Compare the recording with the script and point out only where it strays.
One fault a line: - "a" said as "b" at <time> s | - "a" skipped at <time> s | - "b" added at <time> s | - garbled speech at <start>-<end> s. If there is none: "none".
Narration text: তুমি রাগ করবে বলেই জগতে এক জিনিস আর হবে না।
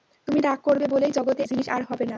- "এক" skipped at 1.4 s